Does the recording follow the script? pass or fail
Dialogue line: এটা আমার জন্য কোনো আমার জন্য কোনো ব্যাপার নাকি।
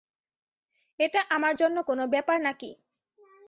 fail